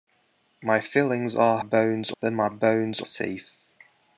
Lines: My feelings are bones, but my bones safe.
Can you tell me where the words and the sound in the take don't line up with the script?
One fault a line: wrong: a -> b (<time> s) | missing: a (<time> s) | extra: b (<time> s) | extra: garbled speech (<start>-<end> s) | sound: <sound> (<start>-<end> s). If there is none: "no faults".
no faults